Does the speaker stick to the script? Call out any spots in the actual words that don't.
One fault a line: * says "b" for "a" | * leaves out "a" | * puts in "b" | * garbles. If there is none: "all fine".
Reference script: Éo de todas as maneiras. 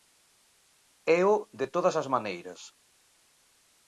all fine